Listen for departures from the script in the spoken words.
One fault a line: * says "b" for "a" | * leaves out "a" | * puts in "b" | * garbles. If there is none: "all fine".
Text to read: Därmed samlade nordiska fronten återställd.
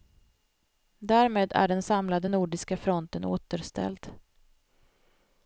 * puts in "är den"